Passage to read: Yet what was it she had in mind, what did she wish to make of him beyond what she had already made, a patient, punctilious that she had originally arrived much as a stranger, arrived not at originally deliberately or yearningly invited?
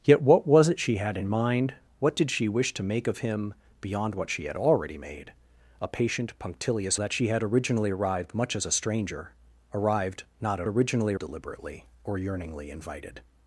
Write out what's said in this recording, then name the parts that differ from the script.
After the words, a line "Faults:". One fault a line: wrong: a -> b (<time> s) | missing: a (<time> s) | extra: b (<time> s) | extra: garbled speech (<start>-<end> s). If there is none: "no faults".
Yet what was it she had in mind, what did she wish to make of him beyond what she had already made, a patient, punctilious that she had originally arrived much as a stranger, arrived not at originally deliberately or yearningly invited?
Faults:
no faults